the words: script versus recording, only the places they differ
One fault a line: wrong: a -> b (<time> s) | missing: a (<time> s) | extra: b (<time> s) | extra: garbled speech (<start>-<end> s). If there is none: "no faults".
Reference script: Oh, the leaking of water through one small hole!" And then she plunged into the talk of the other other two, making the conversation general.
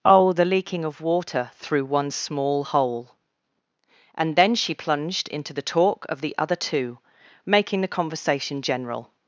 missing: other (6.5 s)